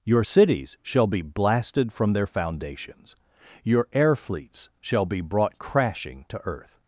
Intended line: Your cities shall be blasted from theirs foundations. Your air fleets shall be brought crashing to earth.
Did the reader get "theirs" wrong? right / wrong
wrong